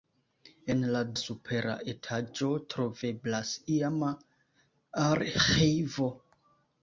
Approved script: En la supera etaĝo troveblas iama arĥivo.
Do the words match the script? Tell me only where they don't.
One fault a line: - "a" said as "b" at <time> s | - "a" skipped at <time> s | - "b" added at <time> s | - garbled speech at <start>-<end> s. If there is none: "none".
none